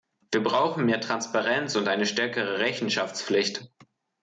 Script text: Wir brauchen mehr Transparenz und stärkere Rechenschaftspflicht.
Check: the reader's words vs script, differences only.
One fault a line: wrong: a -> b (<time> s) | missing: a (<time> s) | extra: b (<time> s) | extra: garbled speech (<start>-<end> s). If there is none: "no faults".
extra: eine (1.9 s)